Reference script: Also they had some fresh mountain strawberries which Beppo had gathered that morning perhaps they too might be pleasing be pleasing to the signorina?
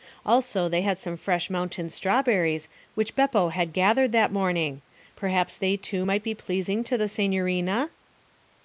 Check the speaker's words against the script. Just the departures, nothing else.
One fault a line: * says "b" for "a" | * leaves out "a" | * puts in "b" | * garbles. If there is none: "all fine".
* leaves out "be pleasing"